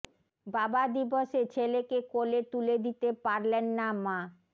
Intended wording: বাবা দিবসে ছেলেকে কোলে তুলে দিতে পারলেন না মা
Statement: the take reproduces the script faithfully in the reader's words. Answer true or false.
true